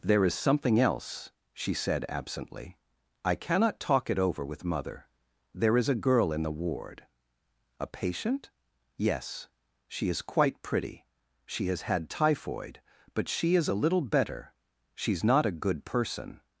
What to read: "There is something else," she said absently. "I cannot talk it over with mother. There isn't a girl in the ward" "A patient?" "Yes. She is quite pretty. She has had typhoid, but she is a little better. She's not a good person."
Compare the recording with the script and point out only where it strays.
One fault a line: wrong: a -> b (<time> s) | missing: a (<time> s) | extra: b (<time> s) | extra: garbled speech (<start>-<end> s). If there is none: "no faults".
wrong: isn't -> is (5.8 s)